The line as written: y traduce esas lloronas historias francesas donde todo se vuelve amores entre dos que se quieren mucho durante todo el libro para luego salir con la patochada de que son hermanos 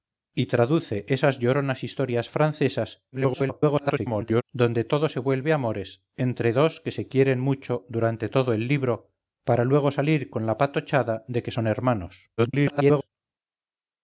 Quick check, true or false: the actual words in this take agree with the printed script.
false